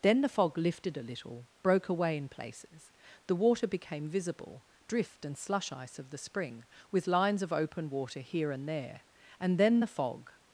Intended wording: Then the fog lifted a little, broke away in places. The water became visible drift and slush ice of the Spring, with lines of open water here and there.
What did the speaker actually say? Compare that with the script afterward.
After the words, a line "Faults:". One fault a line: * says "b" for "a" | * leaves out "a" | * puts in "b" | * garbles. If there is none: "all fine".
Then the fog lifted a little, broke away in places. The water became visible drift and slush ice of the Spring, with lines of open water here and there. And then the fog
Faults:
* puts in "And then the fog"